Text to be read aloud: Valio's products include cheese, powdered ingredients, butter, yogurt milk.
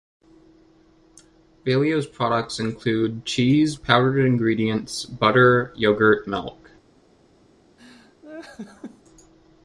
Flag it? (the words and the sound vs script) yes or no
yes